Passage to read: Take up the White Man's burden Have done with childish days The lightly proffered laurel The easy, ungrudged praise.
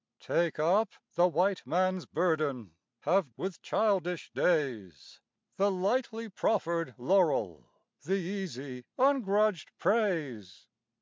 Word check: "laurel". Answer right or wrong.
right